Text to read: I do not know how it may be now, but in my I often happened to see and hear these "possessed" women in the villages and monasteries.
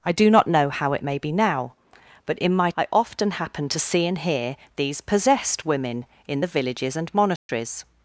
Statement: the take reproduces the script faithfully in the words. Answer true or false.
true